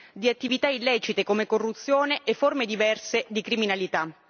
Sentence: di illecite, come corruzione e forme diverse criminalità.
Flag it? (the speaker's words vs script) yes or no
yes